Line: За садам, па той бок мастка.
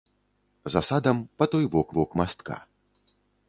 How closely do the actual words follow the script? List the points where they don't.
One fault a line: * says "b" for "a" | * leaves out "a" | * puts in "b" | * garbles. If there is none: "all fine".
* puts in "бок"